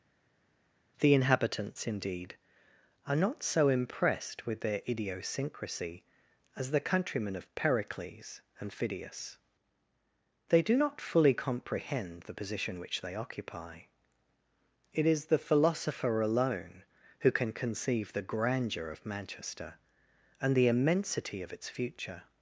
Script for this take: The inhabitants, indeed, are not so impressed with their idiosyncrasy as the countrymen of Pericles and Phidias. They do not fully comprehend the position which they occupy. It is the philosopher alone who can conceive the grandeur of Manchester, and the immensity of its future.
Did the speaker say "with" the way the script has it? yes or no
yes